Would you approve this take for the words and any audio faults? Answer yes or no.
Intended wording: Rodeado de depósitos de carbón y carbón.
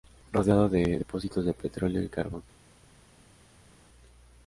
no